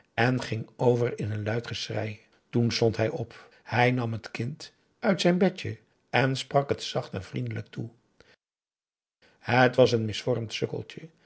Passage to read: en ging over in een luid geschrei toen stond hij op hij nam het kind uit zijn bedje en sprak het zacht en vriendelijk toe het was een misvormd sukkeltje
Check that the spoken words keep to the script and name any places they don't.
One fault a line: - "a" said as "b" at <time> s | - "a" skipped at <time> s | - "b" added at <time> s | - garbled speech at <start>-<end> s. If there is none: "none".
none